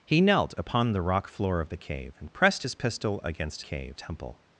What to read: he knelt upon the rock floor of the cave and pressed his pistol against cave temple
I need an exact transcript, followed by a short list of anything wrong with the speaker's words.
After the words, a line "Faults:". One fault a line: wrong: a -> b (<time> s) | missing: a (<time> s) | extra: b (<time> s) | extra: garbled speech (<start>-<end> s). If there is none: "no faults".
he knelt upon the rock floor of the cave and pressed his pistol against cave temple
Faults:
no faults